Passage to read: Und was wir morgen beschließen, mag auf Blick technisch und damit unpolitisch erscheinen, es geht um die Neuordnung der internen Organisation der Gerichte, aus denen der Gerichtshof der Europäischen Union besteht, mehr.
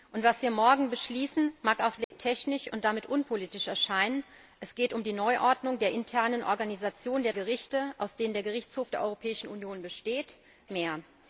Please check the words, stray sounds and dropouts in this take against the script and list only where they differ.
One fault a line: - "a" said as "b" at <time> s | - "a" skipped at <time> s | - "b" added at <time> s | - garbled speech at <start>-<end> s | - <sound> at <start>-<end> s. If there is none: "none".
- dropout at 2.0-2.1 s